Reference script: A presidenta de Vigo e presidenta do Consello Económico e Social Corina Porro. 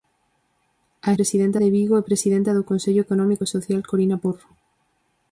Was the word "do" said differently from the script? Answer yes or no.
no